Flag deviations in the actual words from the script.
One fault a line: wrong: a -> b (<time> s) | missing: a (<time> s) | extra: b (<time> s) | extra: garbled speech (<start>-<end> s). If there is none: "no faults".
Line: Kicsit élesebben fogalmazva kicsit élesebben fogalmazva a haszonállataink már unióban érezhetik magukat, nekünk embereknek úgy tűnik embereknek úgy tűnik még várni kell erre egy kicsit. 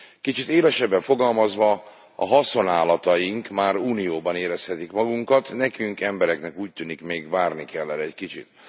missing: kicsit élesebben fogalmazva (1.8 s)
missing: embereknek úgy tűnik (7.0 s)